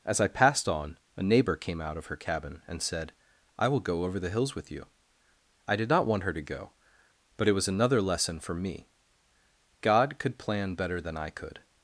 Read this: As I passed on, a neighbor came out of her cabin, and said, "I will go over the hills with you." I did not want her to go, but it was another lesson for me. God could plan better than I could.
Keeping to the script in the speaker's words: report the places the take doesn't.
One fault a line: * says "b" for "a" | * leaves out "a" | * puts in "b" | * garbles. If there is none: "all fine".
all fine